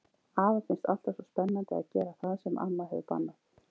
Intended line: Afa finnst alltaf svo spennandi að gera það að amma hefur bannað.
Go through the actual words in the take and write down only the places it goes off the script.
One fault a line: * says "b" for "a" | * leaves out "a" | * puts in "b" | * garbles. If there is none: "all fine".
* says "sem" for "að"